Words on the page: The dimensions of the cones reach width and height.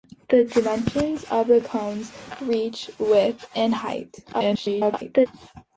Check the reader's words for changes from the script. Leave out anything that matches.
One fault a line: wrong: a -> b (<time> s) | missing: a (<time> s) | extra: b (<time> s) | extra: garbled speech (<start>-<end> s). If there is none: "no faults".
extra: garbled speech (4.3-5.3 s)